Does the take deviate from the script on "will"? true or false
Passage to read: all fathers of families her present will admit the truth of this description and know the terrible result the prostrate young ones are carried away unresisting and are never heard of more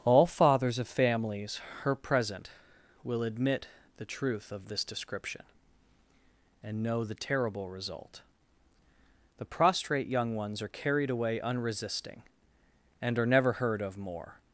false